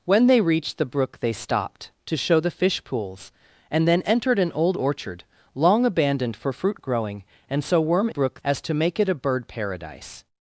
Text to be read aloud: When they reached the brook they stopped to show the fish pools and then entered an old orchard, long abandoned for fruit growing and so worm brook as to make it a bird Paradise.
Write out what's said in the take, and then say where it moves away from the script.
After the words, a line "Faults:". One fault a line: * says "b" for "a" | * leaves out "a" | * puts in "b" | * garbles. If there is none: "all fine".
When they reached the brook they stopped to show the fish pools and then entered an old orchard, long abandoned for fruit growing and so worm brook as to make it a bird Paradise.
Faults:
all fine